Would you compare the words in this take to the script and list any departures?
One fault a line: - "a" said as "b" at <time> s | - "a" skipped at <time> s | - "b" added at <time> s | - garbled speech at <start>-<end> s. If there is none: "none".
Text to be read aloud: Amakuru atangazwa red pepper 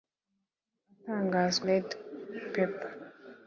none